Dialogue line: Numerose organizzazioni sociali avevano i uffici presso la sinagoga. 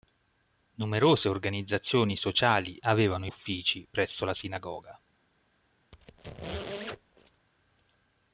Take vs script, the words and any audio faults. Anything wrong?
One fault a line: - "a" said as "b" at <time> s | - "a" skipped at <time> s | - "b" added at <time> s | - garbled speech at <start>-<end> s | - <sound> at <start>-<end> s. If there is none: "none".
- squeak at 5.9-7.5 s